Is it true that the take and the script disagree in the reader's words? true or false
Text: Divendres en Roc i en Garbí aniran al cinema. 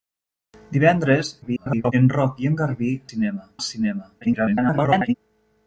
true